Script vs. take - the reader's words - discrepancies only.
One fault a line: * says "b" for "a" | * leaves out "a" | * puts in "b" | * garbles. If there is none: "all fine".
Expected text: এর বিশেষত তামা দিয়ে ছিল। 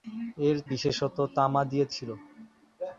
all fine